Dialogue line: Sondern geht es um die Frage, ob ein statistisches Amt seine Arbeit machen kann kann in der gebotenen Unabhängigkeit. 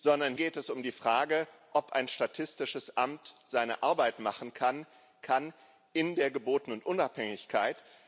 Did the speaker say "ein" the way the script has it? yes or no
yes